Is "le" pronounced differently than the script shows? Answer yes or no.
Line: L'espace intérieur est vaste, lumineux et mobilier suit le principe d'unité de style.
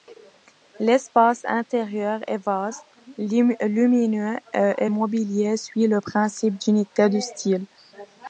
no